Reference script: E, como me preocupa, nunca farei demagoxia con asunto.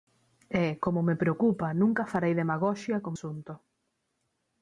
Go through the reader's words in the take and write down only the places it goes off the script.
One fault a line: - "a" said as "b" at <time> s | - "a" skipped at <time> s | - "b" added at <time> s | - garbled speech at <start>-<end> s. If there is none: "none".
none